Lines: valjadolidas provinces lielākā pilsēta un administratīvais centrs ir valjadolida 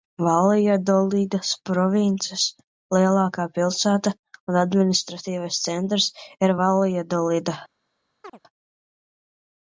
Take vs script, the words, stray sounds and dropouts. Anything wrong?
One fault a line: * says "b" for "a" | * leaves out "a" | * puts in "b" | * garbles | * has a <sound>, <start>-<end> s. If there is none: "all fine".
* has a chirp, 8.2-8.4 s